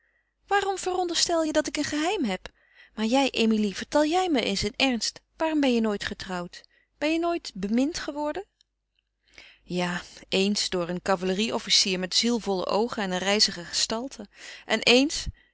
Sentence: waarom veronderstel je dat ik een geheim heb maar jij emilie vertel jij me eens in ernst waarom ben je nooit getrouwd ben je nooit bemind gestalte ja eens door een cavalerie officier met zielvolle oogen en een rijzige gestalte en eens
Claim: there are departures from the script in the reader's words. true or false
true